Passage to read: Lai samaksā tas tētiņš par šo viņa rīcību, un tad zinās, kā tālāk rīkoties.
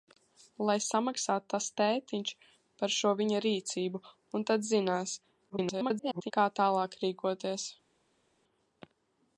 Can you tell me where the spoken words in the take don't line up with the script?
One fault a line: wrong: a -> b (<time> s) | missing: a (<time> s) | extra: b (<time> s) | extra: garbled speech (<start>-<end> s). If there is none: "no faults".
extra: garbled speech (5.5-6.3 s)